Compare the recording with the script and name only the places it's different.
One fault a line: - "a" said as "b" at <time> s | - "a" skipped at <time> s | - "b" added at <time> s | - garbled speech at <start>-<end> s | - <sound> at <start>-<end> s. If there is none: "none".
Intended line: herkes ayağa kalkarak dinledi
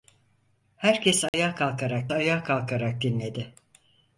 - dropout at 1.3-1.3 s
- "ayağa kalkarak" added at 2.1 s